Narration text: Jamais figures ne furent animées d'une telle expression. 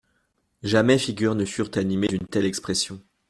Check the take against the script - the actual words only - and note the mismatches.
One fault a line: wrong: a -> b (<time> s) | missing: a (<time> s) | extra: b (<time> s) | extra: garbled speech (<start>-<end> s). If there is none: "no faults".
no faults